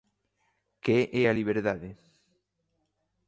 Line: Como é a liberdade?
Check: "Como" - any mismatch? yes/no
yes